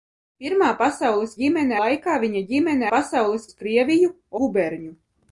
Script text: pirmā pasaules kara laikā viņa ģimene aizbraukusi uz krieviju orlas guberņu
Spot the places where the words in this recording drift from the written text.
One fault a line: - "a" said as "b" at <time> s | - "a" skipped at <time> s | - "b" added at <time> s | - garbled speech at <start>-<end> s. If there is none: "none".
- "kara" said as "ģimene" at 1.4 s
- "aizbraukusi" said as "pasaules" at 2.9 s
- "orlas" skipped at 4.1 s